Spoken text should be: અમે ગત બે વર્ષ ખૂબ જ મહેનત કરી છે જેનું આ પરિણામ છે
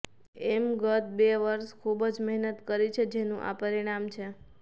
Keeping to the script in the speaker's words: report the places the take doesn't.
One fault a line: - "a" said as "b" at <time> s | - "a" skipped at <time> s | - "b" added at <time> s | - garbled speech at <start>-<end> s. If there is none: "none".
none